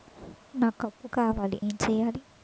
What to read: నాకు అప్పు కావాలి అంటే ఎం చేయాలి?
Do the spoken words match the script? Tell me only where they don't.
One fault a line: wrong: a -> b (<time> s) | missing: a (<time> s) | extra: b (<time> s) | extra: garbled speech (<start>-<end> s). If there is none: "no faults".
missing: అంటే (1.6 s)